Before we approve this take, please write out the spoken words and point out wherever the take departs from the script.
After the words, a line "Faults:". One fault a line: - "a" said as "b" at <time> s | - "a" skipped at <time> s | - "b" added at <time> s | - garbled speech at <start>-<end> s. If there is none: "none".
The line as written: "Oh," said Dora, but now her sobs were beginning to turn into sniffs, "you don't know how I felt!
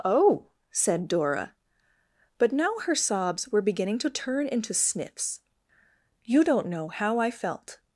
"Oh," said Dora, but now her sobs were beginning to turn into sniffs, "you don't know how I felt!
Faults:
none